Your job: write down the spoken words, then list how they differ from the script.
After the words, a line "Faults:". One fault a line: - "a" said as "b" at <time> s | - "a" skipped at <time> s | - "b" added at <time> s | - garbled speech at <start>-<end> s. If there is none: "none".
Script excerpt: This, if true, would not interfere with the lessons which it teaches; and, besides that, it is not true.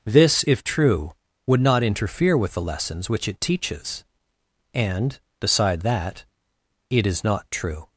This, if true, would not interfere with the lessons which it teaches; and, beside that, it is not true.
Faults:
- "besides" said as "beside" at 5.4 s